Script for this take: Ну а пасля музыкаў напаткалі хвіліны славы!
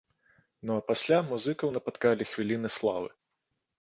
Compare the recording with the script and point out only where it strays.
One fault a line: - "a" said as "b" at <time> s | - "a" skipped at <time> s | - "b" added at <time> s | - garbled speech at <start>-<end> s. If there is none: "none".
none